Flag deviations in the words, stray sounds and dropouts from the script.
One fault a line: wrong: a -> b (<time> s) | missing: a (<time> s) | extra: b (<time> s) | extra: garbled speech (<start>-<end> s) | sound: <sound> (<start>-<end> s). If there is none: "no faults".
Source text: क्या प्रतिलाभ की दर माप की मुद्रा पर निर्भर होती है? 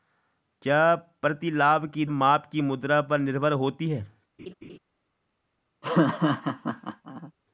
missing: दर (2.0 s)
sound: laugh (4.4-4.8 s)
sound: laugh (5.8-7.3 s)